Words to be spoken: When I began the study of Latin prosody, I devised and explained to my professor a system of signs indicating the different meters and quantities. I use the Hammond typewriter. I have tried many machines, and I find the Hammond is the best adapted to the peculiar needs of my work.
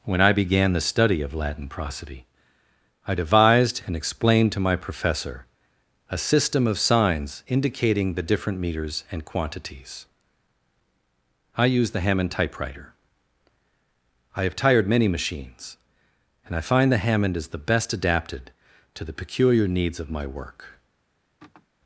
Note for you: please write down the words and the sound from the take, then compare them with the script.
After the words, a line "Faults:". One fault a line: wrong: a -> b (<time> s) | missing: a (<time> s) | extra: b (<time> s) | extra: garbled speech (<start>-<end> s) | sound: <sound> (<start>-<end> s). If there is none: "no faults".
When I began the study of Latin prosody, I devised and explained to my professor a system of signs indicating the different meters and quantities. I use the Hammond typewriter. I have tired many machines, and I find the Hammond is the best adapted to the peculiar needs of my work.
Faults:
wrong: tried -> tired (14.6 s)
sound: sigh (21.4-21.7 s)